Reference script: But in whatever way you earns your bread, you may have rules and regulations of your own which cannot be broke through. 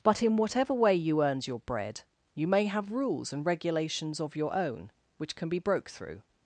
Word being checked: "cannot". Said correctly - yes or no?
no